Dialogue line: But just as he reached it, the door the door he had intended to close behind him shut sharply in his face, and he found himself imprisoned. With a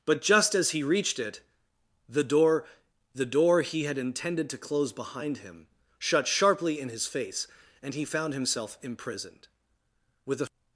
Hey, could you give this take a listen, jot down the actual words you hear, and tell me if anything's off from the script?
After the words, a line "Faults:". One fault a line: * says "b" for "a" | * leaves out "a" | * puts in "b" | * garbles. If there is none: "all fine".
But just as he reached it, the door the door he had intended to close behind him shut sharply in his face, and he found himself imprisoned. With a
Faults:
all fine